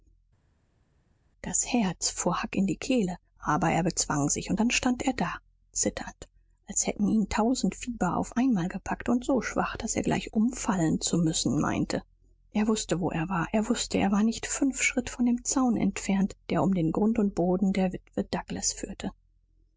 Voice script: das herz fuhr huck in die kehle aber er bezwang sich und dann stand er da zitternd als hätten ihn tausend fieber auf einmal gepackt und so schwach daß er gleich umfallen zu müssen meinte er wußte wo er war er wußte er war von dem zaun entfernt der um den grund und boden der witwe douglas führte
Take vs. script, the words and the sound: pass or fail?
fail